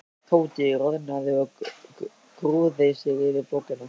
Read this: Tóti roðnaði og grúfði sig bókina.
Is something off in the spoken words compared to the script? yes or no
yes